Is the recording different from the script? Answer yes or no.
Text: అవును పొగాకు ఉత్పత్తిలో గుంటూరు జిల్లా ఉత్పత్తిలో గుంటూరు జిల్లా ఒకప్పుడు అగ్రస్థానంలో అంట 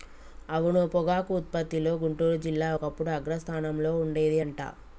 yes